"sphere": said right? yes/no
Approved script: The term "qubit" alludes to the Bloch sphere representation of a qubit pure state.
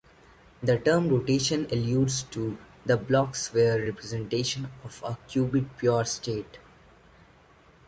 yes